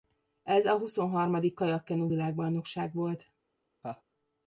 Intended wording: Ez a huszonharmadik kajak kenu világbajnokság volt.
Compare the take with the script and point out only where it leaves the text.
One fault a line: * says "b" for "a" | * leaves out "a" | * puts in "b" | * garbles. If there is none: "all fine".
all fine